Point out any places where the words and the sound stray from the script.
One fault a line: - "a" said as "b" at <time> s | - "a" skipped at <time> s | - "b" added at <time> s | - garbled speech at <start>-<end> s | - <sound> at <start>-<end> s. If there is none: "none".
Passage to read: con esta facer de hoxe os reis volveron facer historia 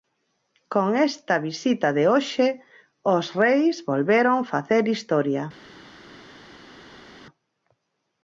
- "facer" said as "visita" at 1.5 s